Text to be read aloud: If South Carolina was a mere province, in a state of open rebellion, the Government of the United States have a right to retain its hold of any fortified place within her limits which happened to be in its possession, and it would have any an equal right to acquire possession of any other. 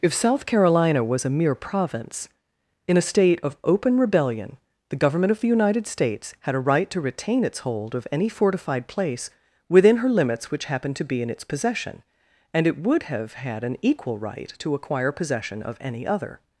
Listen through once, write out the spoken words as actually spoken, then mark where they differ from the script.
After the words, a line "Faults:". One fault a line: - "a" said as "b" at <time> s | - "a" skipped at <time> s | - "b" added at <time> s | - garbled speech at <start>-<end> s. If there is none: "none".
If South Carolina was a mere province, in a state of open rebellion, the Government of the United States had a right to retain its hold of any fortified place within her limits which happened to be in its possession, and it would have had an equal right to acquire possession of any other.
Faults:
- "have" said as "had" at 6.4 s
- "any" said as "had" at 13.3 s